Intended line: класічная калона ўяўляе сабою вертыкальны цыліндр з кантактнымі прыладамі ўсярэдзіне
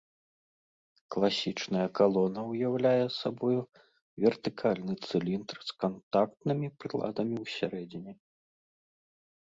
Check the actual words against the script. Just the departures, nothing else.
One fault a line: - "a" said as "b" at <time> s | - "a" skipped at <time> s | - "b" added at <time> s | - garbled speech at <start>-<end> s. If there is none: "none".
none